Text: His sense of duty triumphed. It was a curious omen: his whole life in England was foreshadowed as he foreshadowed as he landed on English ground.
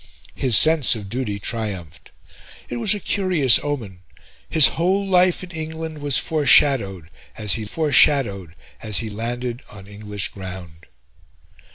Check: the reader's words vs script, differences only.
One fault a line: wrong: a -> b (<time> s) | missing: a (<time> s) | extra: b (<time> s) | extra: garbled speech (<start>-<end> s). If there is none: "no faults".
no faults